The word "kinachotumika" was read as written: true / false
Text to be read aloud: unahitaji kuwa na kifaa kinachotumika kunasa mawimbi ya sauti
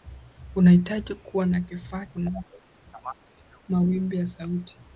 false